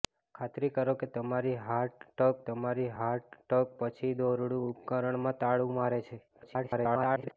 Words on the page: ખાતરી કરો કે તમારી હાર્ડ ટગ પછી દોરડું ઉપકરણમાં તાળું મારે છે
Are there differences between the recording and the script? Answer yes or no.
yes